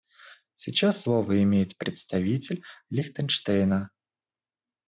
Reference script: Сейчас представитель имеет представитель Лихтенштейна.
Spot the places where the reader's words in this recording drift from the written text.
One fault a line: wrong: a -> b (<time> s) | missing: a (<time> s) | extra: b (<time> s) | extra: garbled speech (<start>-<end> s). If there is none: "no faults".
wrong: представитель -> слово (1.0 s)